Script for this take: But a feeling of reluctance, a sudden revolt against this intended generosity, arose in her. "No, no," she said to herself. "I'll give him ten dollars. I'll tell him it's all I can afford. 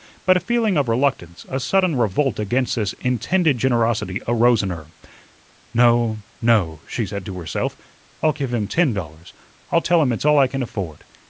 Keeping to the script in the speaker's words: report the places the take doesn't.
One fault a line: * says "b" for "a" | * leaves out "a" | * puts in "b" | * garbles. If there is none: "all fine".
all fine